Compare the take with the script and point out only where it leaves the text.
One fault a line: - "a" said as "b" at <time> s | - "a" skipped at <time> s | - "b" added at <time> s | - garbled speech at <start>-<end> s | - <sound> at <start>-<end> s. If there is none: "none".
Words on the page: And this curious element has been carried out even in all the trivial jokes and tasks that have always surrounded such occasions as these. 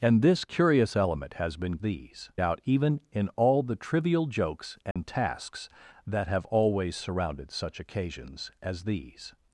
- "carried" said as "these" at 1.8 s
- dropout at 4.9-5.0 s